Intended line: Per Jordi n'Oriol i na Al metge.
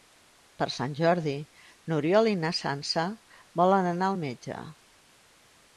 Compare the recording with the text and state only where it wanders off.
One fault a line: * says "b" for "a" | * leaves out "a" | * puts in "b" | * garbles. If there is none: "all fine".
* puts in "Sant"
* puts in "Sança volen anar"